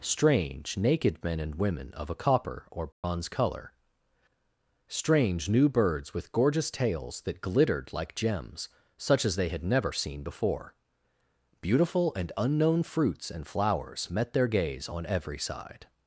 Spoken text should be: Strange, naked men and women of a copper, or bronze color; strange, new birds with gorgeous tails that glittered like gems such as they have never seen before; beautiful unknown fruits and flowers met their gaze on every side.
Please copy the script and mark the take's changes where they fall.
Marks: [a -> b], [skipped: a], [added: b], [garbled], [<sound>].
Strange, naked men and women of a copper, or bronze [dropout] color; strange, new birds with gorgeous tails that glittered like gems such as they [have -> had] never seen before; beautiful [added: and] unknown fruits and flowers met their gaze on every side.